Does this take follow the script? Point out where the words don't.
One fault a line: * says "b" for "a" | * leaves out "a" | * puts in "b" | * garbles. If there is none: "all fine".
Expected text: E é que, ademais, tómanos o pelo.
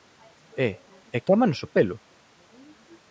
* leaves out "que ademais"